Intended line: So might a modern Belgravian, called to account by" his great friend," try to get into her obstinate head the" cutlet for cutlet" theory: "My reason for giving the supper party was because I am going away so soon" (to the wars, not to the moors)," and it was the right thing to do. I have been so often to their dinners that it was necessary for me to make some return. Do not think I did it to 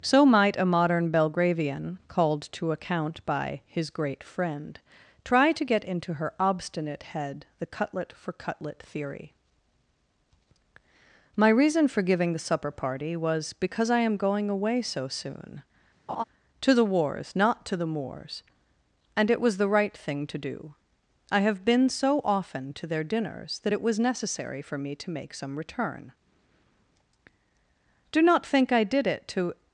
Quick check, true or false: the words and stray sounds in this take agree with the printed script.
false